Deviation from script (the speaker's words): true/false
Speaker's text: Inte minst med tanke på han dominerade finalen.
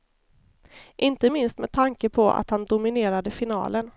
true